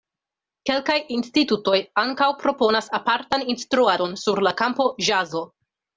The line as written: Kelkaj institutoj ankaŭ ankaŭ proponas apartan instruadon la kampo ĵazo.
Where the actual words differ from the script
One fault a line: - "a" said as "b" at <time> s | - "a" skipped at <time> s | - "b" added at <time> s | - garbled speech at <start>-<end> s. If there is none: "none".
- "ankaŭ" skipped at 2.3 s
- "sur" added at 4.2 s